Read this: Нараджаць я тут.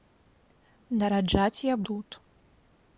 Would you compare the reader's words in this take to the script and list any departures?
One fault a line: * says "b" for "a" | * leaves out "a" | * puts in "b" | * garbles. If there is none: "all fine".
all fine